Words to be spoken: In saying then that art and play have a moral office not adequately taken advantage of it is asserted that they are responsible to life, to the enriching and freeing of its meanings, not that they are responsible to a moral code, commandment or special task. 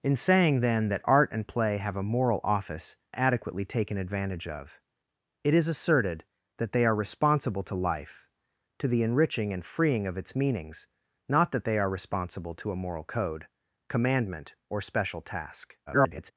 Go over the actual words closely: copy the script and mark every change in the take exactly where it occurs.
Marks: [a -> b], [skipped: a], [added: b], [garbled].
In saying then that art and play have a moral office [skipped: not] adequately taken advantage of it is asserted that they are responsible to life, to the enriching and freeing of its meanings, not that they are responsible to a moral code, commandment or special task. [garbled]